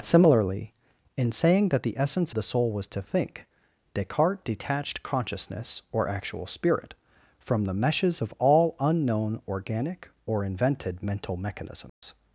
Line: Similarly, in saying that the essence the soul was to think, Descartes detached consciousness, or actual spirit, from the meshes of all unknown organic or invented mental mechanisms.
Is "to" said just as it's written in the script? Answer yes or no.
yes